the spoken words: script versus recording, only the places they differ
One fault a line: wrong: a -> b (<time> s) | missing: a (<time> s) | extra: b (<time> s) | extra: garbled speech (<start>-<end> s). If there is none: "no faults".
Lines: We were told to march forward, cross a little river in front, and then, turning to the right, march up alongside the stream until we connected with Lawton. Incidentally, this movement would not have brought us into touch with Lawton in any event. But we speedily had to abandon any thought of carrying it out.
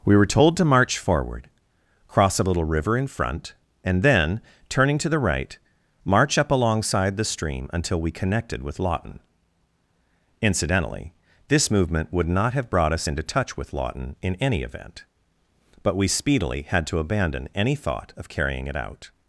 no faults